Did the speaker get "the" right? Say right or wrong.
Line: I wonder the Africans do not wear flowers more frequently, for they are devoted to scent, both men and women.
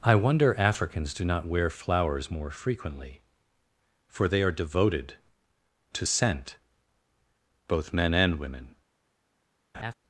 wrong